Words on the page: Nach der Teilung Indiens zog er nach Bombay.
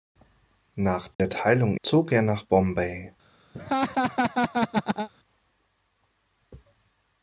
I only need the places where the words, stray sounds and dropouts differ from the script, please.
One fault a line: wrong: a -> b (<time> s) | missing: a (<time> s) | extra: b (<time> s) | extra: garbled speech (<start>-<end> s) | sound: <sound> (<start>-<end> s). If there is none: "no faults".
sound: dropout (1.1-1.2 s)
missing: Indiens (1.8 s)
sound: laugh (3.5-5.1 s)